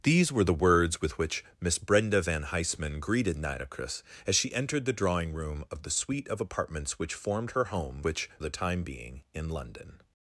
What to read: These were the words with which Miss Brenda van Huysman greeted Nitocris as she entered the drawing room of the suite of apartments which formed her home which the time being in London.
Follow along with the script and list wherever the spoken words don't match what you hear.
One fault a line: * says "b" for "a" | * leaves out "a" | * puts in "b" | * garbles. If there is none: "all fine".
all fine